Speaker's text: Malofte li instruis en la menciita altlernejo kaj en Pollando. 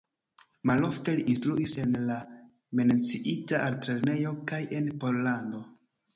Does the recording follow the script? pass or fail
pass